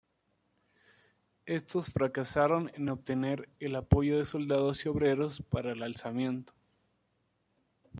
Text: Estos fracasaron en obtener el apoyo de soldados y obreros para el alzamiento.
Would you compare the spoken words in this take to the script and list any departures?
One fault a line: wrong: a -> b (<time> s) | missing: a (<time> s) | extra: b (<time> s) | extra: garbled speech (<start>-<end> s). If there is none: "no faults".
no faults